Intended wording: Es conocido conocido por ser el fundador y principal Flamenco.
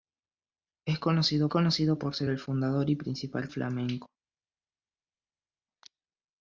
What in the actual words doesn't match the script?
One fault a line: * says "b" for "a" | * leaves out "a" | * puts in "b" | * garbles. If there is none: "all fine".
all fine